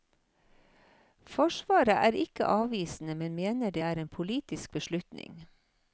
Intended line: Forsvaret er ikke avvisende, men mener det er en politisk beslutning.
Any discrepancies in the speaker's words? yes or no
no